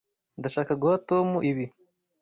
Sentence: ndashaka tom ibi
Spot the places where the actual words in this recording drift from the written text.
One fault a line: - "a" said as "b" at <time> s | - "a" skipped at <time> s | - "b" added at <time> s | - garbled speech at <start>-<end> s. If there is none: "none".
- "guha" added at 0.8 s